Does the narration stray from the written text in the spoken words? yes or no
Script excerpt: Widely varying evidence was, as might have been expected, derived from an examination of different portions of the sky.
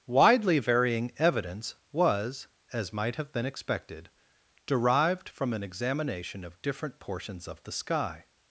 no